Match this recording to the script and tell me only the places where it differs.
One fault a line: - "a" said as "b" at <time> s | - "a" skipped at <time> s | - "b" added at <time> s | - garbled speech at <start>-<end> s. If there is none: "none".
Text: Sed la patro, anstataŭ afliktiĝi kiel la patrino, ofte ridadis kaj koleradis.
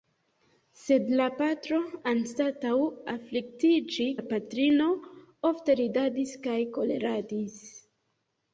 - "kiel" skipped at 4.1 s